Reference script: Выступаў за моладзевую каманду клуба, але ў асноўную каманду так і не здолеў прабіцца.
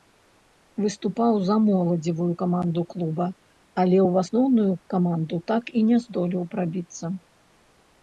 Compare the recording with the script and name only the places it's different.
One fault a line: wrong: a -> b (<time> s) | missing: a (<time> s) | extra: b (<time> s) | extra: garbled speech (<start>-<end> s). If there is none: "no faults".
no faults